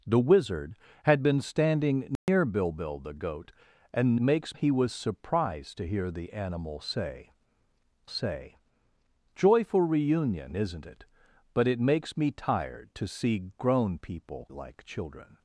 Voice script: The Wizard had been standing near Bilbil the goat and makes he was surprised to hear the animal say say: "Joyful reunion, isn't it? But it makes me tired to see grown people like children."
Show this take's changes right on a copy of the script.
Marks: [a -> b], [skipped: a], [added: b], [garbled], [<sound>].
The Wizard had been standing near [dropout] Bilbil the goat and makes he was surprised to hear the animal say say: "Joyful reunion, isn't it? But it makes me tired to see grown people like children."